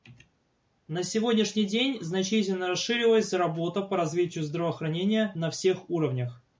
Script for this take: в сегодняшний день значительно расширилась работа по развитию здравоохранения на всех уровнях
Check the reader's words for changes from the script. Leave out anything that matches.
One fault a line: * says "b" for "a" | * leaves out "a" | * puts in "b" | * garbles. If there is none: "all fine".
* says "на" for "в"